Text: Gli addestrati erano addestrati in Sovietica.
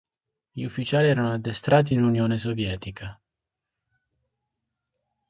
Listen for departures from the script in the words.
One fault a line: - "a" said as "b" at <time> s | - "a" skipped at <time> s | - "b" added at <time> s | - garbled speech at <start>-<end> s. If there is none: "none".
- "addestrati" said as "ufficiali" at 0.6 s
- "Unione" added at 2.0 s